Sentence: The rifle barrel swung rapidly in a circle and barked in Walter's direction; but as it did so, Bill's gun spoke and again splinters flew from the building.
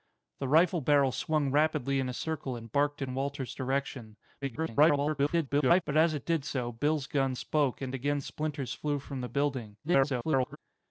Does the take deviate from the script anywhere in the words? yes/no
yes